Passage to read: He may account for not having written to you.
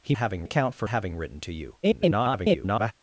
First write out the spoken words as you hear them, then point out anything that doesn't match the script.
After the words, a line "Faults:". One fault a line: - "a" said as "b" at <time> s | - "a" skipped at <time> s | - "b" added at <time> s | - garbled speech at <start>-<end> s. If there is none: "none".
He having account for having written to you. [garbled]
Faults:
- "may" said as "having" at 0.2 s
- "not" skipped at 0.9 s
- garbled speech at 1.8-2.9 s